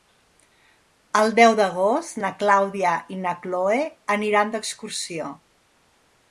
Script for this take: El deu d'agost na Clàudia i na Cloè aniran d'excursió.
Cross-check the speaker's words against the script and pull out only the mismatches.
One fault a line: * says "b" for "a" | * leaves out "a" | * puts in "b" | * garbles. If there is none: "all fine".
all fine